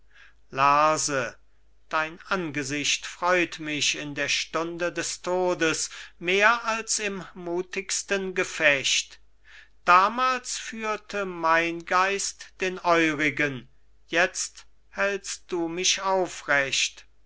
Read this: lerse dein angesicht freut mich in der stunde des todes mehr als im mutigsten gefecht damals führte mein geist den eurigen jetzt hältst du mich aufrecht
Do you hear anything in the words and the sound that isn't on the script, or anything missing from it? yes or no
no